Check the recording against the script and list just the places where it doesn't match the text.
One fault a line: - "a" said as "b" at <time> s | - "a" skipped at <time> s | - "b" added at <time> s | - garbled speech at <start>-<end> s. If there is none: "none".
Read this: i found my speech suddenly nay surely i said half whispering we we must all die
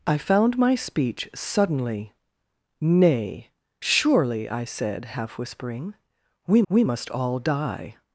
none